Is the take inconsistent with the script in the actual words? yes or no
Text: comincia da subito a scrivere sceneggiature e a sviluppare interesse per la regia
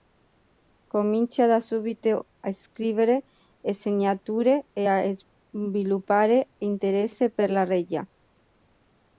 no